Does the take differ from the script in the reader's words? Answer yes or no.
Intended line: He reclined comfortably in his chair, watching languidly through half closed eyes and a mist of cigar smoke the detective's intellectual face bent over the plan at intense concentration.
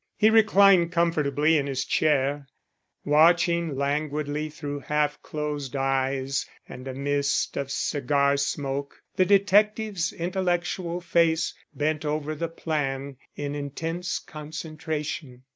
yes